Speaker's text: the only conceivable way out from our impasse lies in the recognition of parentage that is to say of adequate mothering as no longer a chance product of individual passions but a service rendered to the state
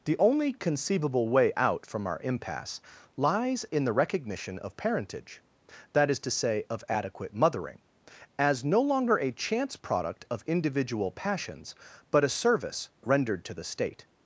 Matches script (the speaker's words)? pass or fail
pass